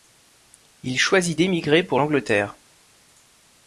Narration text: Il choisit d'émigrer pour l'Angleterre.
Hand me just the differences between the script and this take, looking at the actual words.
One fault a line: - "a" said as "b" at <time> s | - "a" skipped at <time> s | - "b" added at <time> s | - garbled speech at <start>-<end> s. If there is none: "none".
none